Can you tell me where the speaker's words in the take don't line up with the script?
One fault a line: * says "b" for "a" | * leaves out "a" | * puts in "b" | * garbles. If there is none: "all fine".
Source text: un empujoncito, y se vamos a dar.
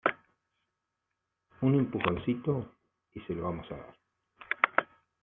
* puts in "lo"